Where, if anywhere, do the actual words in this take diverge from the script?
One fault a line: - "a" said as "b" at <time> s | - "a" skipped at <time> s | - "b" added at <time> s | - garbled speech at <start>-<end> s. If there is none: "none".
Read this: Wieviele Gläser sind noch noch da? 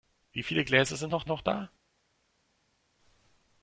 none